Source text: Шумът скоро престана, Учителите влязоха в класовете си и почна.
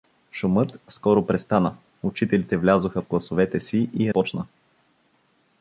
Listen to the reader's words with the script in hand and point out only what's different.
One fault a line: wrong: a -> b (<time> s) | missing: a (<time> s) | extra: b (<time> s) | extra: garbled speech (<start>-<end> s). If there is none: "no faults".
no faults